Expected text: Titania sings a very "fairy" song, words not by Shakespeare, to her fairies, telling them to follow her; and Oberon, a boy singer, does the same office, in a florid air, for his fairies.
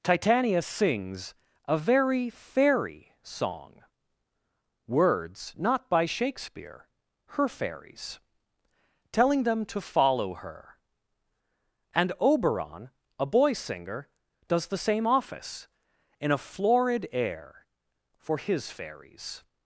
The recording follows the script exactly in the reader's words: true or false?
false